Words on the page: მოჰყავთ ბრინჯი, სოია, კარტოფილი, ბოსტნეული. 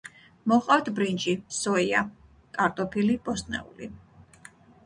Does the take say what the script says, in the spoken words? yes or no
yes